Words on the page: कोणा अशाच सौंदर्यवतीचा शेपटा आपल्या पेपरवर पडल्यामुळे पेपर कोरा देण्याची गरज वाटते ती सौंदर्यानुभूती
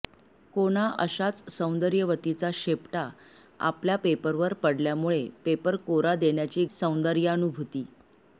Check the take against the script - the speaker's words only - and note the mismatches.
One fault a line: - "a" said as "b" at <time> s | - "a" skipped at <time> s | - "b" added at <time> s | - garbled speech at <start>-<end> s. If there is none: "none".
- "गरज वाटते ती" skipped at 6.7 s